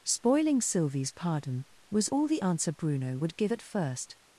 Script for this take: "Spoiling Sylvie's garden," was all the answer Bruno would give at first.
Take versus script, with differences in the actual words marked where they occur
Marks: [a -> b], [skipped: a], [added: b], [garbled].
"Spoiling Sylvie's [garden," -> pardon] was all the answer Bruno would give at first.